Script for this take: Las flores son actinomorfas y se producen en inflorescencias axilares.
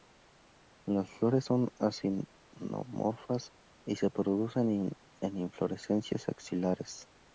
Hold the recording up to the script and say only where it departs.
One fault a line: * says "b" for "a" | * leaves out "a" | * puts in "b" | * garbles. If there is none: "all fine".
all fine